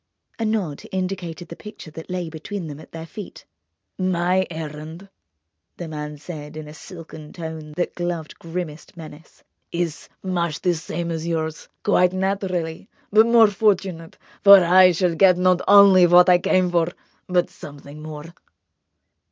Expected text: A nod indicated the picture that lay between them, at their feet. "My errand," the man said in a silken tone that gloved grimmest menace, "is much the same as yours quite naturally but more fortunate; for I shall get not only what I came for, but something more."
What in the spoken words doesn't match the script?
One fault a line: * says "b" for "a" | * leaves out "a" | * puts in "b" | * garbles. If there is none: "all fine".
all fine